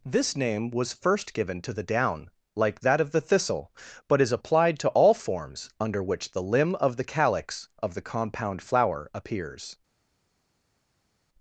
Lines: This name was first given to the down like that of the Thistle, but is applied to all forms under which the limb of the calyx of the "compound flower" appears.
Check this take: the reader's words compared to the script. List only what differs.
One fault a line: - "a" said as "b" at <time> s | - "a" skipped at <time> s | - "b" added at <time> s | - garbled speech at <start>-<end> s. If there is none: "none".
none